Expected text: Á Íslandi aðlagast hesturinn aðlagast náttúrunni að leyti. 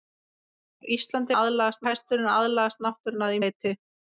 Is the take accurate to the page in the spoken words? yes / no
yes